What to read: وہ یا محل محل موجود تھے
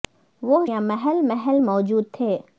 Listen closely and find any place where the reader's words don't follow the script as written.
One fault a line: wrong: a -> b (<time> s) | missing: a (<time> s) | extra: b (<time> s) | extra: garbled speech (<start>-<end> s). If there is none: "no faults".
no faults